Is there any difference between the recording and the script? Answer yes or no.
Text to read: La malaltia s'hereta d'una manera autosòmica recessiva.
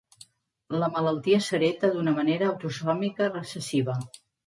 no